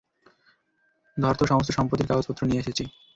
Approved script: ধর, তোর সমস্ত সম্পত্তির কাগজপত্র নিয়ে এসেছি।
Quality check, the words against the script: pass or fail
pass